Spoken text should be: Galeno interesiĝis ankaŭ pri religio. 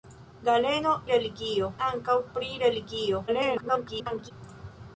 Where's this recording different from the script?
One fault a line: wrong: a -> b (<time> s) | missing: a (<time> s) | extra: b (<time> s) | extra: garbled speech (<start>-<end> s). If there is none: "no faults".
wrong: interesiĝis -> religio (1.1 s)
extra: garbled speech (3.3-4.3 s)